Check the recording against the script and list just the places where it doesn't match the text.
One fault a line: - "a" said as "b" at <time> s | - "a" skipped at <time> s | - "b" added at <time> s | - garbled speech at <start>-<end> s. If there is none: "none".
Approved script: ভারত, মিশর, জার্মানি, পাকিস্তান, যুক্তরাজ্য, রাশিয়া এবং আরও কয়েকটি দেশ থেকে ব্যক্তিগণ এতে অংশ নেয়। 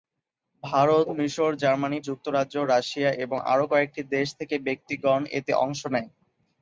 - "পাকিস্তান" skipped at 2.0 s